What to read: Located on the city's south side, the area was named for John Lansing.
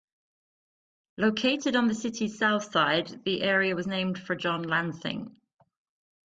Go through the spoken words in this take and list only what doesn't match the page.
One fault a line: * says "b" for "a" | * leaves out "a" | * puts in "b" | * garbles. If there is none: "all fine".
all fine